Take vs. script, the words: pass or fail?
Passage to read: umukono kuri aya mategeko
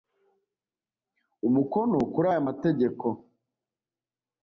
pass